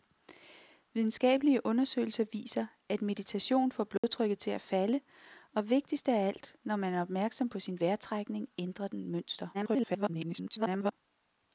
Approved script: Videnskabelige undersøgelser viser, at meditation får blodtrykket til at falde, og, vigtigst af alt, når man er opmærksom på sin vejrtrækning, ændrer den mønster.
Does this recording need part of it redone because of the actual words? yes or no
yes